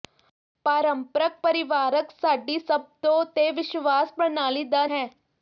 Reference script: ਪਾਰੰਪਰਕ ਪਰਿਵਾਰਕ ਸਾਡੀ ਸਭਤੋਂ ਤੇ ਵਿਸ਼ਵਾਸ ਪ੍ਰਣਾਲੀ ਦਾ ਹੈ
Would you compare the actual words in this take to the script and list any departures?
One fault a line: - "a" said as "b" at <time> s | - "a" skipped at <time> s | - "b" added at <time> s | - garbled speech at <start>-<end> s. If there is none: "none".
none